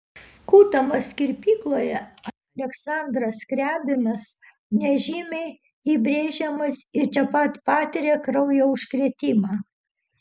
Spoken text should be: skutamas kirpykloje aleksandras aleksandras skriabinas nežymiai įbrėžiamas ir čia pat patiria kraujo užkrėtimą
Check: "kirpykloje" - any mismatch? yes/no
no